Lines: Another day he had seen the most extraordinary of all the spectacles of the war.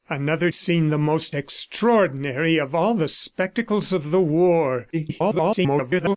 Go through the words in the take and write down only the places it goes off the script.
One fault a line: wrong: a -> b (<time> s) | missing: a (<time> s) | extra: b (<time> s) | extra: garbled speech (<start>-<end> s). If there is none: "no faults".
missing: day he had (0.5 s)
extra: garbled speech (4.9-6.2 s)